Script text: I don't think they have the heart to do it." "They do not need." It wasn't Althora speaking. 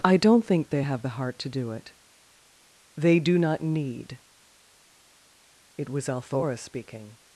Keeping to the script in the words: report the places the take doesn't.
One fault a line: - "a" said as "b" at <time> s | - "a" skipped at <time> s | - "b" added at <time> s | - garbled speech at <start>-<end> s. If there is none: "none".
- "wasn't" said as "was" at 5.9 s